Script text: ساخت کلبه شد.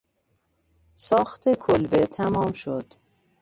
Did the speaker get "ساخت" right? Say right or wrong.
right